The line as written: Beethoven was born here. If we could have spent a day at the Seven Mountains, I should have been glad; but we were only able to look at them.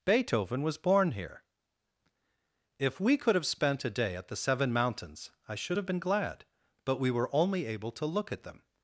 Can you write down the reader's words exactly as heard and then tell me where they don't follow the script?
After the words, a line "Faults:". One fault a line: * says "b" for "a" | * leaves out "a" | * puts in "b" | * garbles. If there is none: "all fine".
Beethoven was born here. If we could have spent a day at the Seven Mountains, I should have been glad; but we were only able to look at them.
Faults:
all fine